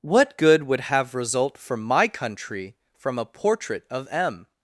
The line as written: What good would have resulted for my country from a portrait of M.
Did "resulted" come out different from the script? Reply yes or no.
yes